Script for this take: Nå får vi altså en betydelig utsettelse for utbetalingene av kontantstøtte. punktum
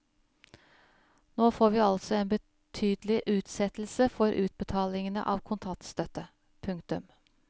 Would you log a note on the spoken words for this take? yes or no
no